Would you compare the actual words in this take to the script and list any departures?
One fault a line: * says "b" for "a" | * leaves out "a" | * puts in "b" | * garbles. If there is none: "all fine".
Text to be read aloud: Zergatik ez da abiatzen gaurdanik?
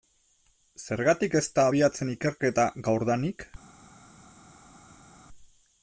* puts in "ikerketa"